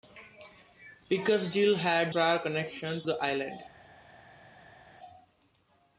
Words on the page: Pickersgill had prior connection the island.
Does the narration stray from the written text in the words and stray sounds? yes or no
no